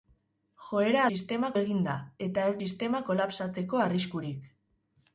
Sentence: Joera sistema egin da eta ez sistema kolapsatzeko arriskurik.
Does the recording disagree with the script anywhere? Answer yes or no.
no